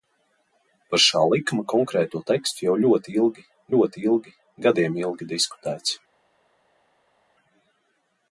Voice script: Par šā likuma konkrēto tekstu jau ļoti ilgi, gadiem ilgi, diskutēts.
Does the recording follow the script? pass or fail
fail